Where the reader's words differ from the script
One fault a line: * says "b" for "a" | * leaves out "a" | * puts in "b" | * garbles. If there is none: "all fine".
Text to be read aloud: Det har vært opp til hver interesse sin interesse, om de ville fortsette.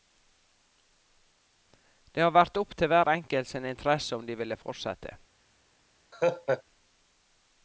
* says "enkelt" for "interesse"